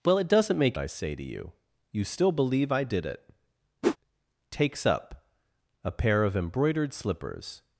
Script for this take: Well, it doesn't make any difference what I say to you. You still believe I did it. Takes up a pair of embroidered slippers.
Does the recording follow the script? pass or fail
fail